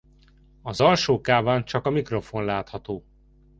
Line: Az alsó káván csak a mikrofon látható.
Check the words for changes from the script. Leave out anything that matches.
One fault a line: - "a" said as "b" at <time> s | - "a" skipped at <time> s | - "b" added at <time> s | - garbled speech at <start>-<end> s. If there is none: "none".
none